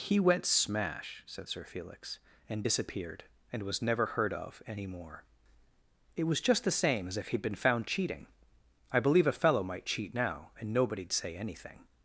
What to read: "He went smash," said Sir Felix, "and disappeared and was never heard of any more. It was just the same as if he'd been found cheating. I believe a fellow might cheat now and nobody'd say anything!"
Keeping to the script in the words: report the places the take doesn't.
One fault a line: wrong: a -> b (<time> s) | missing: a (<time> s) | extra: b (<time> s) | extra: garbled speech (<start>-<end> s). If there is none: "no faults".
no faults